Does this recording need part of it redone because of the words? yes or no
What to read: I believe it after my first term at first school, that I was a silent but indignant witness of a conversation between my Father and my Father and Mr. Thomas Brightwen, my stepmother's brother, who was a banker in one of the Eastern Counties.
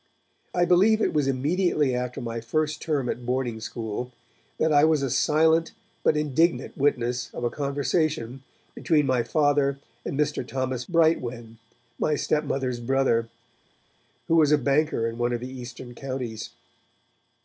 yes